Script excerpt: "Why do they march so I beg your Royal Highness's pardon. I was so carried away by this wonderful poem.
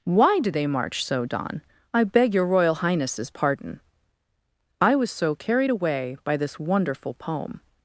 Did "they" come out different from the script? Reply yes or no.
no